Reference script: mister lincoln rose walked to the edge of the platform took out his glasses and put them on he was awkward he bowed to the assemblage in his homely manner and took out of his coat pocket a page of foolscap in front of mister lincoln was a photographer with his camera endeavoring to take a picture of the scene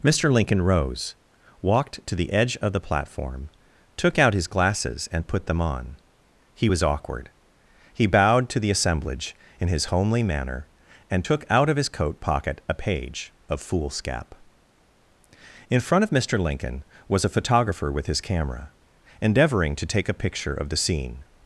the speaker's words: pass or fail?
pass